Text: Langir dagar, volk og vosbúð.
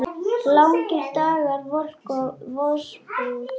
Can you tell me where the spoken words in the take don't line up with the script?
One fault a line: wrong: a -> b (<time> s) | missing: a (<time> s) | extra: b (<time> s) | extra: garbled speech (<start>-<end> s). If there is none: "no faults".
no faults